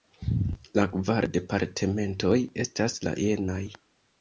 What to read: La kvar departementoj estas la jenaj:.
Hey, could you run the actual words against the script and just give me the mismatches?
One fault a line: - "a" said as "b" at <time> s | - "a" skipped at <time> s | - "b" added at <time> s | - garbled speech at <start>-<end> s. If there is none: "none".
none